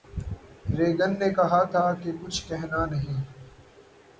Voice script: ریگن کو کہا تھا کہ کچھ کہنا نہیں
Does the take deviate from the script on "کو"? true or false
true